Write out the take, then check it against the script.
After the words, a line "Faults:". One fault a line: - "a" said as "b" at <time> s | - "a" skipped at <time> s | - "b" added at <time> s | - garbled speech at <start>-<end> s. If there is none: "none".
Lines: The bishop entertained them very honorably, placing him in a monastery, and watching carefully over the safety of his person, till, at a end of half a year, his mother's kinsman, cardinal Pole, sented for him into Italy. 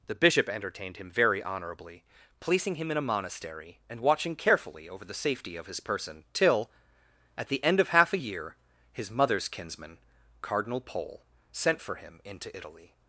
The bishop entertained him very honorably, placing him in a monastery, and watching carefully over the safety of his person, till, at the end of half a year, his mother's kinsman, cardinal Pole, sent for him into Italy.
Faults:
- "them" said as "him" at 1.0 s
- "a" said as "the" at 7.5 s
- "sented" said as "sent" at 11.5 s